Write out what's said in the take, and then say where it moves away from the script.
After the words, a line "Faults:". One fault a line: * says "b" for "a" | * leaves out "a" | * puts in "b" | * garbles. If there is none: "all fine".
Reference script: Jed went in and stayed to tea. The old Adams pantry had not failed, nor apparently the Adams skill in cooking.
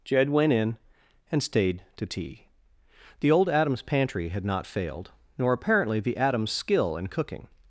Jed went in and stayed to tea. The old Adams pantry had not failed, nor apparently the Adams skill in cooking.
Faults:
all fine